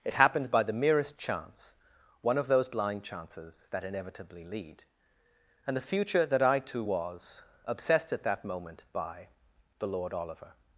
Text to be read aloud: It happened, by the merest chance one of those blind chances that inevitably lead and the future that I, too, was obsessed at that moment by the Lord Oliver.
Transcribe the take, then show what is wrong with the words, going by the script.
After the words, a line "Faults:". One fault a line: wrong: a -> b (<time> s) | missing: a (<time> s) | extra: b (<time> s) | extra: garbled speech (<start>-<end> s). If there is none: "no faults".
It happened, by the merest chance one of those blind chances that inevitably lead and the future that I, too, was obsessed at that moment by the Lord Oliver.
Faults:
no faults